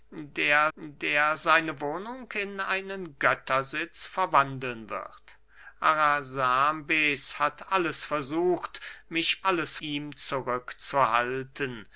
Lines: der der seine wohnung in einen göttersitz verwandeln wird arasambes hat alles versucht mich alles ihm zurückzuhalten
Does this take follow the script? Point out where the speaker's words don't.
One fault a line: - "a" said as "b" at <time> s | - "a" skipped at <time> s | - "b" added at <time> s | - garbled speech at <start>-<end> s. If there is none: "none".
none